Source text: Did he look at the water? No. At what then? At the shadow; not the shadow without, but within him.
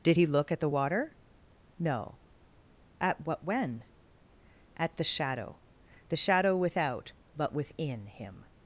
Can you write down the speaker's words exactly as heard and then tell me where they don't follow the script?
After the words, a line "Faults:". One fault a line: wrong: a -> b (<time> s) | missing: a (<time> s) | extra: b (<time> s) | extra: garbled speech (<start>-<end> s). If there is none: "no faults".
Did he look at the water? No. At what when? At the shadow; the shadow without, but within him.
Faults:
wrong: then -> when (3.4 s)
missing: not (5.6 s)